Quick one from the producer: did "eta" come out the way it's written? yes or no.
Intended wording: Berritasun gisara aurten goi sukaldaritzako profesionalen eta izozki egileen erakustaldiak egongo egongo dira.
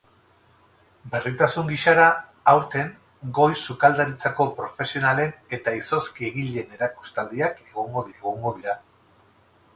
yes